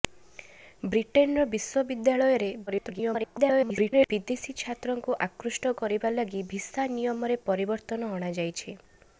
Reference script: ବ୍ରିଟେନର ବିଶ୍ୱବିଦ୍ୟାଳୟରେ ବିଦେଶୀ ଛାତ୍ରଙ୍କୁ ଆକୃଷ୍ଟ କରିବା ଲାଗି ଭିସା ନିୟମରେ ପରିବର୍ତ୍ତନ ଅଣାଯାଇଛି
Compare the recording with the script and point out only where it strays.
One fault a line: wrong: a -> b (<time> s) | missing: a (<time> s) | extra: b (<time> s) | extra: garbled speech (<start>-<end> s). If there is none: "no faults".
extra: garbled speech (2.7-4.1 s)